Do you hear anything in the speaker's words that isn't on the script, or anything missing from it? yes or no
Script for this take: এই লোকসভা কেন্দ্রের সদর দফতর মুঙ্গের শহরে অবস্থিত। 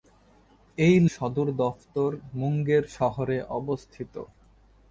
yes